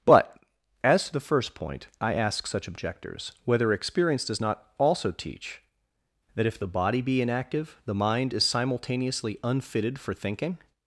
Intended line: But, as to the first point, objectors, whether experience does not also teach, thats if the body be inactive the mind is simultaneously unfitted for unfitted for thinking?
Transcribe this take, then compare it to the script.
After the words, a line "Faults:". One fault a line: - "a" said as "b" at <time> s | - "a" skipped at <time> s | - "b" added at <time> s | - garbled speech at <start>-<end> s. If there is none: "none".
But, as to the first point, I ask such objectors, whether experience does not also teach, that if the body be inactive the mind is simultaneously unfitted for thinking?
Faults:
- "I ask such" added at 2.0 s
- "thats" said as "that" at 6.4 s
- "unfitted for" skipped at 10.1 s